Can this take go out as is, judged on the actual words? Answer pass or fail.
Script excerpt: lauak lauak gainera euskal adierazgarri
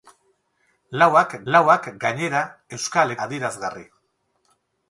pass